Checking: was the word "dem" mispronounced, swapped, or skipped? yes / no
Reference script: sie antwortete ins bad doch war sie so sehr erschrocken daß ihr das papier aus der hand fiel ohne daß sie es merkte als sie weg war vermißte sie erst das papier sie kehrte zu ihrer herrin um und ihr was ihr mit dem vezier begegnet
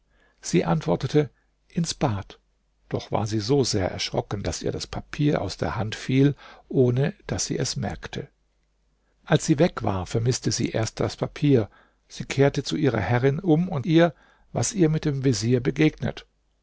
no